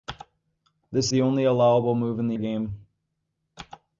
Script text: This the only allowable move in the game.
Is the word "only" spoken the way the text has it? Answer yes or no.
yes